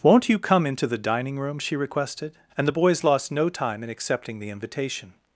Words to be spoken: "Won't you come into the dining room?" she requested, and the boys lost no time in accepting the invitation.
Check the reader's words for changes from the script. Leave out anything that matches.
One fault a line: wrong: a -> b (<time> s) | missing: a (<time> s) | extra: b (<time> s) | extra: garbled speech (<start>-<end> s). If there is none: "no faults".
no faults